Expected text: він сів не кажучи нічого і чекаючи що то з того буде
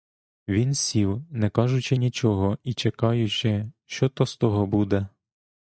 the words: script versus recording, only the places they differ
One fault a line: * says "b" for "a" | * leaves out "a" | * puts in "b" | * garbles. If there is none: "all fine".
all fine